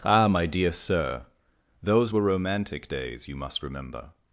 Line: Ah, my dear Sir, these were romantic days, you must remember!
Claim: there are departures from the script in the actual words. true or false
true